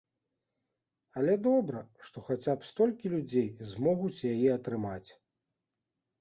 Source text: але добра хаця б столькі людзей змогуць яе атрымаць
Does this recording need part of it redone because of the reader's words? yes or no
yes